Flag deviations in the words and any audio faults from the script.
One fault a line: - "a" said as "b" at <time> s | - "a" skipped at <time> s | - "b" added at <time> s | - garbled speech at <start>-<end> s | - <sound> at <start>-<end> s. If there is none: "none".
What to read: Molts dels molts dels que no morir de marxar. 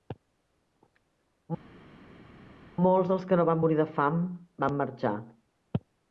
- "molts dels" skipped at 3.3 s
- "van" added at 3.5 s
- "fam van" added at 4.0 s